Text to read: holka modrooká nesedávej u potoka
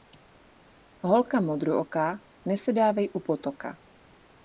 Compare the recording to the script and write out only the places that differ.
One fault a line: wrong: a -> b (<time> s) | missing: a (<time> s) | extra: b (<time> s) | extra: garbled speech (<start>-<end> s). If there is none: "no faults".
no faults